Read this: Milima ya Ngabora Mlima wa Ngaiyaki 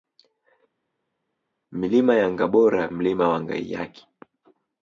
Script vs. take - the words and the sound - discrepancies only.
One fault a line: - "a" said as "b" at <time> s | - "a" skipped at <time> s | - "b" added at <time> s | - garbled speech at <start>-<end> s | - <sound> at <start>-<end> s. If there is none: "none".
none